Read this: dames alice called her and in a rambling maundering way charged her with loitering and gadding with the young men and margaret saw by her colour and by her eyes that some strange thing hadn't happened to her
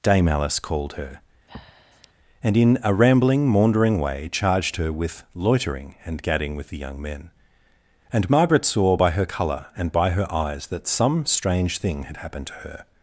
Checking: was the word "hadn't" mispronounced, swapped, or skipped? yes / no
yes